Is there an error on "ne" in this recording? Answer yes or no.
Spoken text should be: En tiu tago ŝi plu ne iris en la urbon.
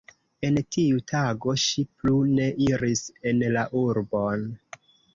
no